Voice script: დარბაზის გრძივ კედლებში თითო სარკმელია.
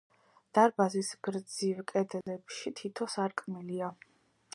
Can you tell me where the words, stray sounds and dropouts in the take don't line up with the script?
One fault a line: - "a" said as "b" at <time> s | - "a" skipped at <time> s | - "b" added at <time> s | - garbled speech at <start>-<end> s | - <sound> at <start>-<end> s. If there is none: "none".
- dropout at 2.2-2.3 s